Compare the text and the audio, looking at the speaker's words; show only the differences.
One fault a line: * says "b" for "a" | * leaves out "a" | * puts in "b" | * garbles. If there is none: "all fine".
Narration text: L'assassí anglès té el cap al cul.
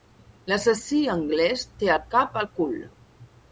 all fine